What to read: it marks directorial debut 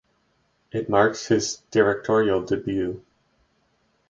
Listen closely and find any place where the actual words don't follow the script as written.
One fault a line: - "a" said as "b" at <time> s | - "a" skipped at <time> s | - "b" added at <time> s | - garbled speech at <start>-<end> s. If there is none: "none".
- "his" added at 1.3 s